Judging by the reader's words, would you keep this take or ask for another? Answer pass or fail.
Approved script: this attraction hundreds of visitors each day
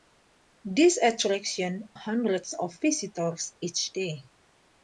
pass